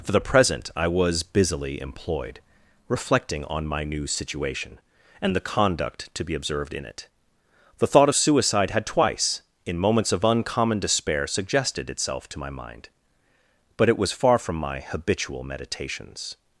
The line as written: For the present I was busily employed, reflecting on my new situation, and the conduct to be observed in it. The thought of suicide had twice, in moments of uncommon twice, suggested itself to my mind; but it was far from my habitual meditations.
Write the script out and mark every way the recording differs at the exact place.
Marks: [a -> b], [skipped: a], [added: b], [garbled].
For the present I was busily employed, reflecting on my new situation, and the conduct to be observed in it. The thought of suicide had twice, in moments of uncommon [twice, -> despair] suggested itself to my mind; but it was far from my habitual meditations.